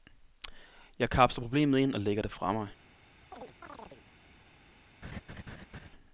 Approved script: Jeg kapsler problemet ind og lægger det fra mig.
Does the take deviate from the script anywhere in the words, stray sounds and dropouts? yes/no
yes